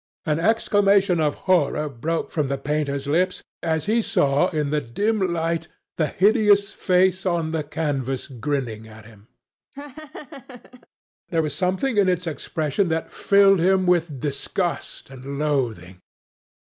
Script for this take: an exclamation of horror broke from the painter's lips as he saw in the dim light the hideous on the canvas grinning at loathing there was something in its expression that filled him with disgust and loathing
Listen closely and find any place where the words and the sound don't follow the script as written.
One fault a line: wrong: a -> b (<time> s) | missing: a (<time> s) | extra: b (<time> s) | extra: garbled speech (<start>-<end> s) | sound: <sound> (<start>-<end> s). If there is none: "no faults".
extra: face (6.7 s)
wrong: loathing -> him (9.1 s)
sound: laugh (9.7-10.9 s)